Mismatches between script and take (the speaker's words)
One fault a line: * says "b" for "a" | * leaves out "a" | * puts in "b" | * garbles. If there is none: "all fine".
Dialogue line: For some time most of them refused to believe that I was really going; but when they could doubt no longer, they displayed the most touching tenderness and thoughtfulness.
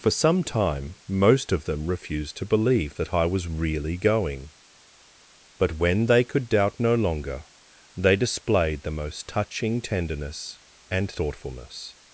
all fine